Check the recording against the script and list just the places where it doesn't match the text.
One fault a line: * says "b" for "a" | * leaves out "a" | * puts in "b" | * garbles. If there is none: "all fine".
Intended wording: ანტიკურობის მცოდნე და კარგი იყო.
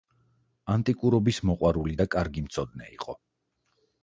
* says "მოყვარული" for "მცოდნე"
* puts in "მცოდნე"